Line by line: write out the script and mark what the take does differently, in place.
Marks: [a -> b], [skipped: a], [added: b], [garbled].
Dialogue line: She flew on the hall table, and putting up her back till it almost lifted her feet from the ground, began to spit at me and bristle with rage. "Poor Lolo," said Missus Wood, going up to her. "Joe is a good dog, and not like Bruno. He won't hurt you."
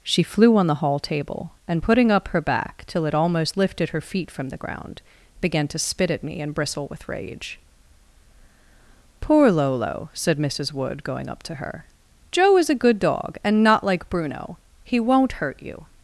She flew on the hall table, and putting up her back till it almost lifted her feet from the ground, began to spit at me and bristle with rage. "Poor Lolo," said Missus Wood, going up to her. "Joe is a good dog, and not like Bruno. He won't hurt you."